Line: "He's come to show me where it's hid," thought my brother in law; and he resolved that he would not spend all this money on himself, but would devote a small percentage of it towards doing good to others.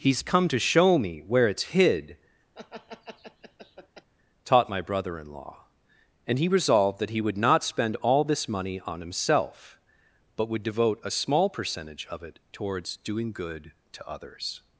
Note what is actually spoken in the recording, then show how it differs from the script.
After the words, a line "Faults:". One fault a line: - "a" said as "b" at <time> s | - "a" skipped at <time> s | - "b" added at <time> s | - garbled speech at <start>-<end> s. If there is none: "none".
"He's come to show me where it's hid," taught my brother in law; and he resolved that he would not spend all this money on himself, but would devote a small percentage of it towards doing good to others.
Faults:
- "thought" said as "taught" at 4.5 s